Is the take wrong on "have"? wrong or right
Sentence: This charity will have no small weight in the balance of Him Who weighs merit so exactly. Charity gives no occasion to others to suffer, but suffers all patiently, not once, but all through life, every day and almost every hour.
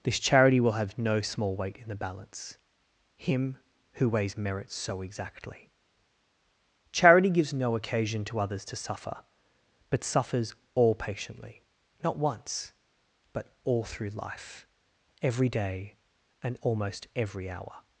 right